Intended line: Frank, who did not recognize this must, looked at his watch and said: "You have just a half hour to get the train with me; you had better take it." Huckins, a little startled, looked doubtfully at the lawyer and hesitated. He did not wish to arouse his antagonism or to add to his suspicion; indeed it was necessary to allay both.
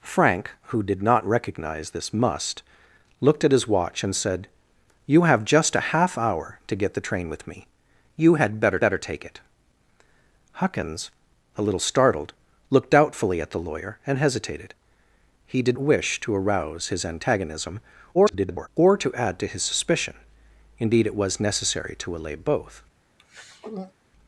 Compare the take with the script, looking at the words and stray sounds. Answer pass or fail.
fail